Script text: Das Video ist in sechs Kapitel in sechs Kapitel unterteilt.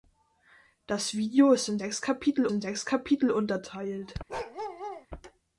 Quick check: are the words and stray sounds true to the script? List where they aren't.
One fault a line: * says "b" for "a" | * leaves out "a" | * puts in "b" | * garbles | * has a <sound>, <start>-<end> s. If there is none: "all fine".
* has a bark, 4.3-5.1 s